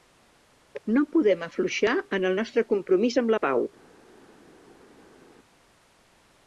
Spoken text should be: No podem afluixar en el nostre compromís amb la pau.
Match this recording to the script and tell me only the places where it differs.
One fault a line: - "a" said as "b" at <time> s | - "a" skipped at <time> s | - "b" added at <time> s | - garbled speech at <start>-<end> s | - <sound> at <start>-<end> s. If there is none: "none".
none